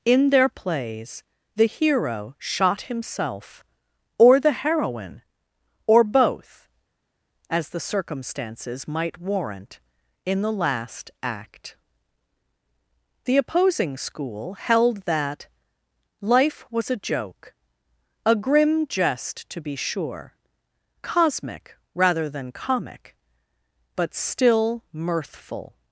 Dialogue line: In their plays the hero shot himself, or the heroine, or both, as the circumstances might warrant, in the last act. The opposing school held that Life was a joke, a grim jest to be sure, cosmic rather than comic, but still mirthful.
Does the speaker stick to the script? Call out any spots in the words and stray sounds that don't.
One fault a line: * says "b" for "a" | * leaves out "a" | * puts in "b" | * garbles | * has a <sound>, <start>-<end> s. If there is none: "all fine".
all fine